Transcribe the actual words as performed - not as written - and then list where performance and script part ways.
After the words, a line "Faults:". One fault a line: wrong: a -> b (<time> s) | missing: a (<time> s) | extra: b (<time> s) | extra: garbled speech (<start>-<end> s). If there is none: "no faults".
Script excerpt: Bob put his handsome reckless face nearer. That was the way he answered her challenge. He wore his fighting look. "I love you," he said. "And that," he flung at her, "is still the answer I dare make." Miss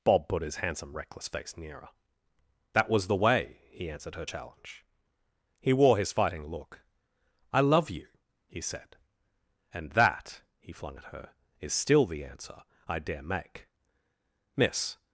Bob put his handsome reckless face nearer. That was the way he answered her challenge. He wore his fighting look. "I love you," he said. "And that," he flung at her, "is still the answer I dare make." Miss
Faults:
no faults